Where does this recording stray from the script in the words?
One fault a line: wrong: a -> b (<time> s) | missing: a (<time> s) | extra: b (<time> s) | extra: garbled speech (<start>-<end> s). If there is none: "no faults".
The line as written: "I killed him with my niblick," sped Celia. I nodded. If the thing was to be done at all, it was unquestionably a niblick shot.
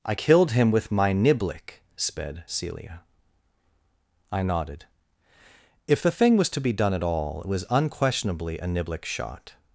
no faults